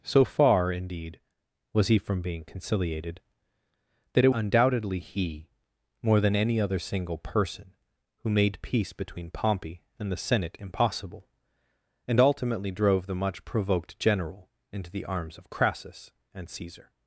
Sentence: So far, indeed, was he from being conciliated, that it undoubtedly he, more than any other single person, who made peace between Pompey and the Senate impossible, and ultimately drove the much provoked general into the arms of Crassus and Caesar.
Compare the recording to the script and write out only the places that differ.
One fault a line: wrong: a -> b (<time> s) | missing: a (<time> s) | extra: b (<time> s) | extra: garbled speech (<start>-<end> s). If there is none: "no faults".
no faults